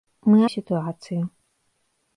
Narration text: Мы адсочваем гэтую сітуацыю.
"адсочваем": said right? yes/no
no